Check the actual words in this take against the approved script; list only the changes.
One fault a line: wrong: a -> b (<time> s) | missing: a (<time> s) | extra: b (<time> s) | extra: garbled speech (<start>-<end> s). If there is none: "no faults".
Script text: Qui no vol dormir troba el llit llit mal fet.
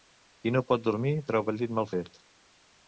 wrong: vol -> pot (0.7 s)
missing: llit (1.8 s)